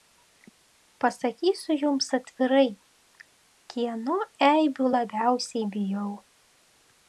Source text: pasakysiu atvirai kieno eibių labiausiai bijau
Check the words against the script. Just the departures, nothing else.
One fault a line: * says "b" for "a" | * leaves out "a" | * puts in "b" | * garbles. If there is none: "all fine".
* puts in "jums"